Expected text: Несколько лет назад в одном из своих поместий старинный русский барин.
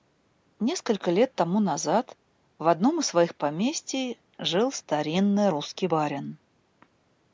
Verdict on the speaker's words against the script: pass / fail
fail